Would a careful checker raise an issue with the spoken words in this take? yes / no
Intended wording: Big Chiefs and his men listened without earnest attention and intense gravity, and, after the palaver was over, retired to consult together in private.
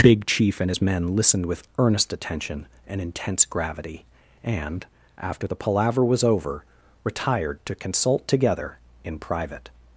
yes